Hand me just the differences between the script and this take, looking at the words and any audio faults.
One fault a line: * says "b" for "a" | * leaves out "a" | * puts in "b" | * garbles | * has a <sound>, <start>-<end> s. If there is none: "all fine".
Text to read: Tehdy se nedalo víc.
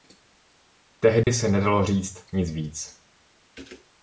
* has a dropout, 1.2-1.3 s
* puts in "říct nic"